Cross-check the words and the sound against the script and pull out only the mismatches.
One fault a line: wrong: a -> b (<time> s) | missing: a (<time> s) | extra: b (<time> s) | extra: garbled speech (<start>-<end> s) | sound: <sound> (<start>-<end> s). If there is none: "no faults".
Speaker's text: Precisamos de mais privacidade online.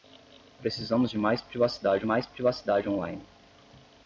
extra: mais privacidade (2.0 s)